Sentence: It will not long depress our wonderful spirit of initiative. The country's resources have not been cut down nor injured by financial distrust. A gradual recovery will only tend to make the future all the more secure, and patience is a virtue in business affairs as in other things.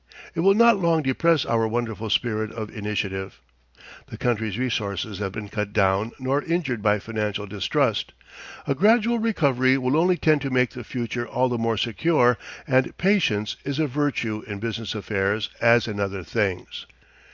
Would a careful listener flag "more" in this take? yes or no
no